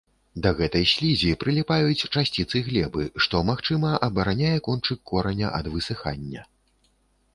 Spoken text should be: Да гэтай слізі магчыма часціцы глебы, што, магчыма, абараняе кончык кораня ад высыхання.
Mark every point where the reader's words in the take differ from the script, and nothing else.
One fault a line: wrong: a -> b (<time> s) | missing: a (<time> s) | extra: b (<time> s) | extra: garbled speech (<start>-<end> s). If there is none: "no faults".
wrong: магчыма -> прыліпаюць (1.4 s)